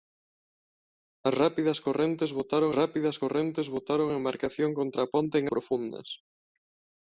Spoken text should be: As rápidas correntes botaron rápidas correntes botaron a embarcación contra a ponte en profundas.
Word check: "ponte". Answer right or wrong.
right